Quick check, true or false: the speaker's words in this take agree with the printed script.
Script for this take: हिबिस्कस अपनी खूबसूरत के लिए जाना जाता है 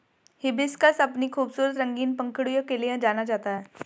false